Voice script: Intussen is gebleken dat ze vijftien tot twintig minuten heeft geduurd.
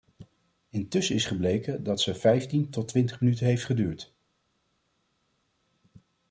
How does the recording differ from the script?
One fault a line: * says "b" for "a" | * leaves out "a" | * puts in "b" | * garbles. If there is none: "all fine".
all fine